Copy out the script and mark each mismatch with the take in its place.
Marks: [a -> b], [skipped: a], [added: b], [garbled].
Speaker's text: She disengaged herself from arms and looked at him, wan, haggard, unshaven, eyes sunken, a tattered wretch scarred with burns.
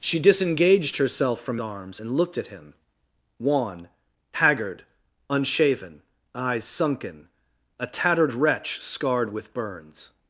She disengaged herself from arms and looked at him, wan, haggard, unshaven, eyes sunken, a tattered wretch scarred with burns.